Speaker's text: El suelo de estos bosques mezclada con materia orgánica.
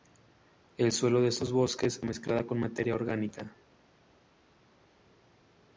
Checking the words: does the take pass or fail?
pass